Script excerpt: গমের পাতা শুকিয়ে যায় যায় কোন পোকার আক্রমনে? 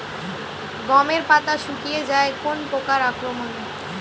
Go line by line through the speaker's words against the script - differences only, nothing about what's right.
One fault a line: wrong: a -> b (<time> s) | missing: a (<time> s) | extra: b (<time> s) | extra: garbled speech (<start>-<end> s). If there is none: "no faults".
missing: যায় (2.3 s)